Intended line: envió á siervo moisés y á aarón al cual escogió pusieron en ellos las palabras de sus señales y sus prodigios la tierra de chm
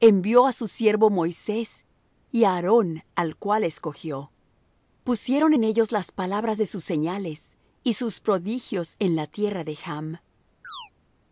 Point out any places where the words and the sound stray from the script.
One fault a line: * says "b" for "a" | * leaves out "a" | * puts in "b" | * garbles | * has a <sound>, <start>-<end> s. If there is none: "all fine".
* puts in "su"
* puts in "en"
* has a chirp, 10.6-10.9 s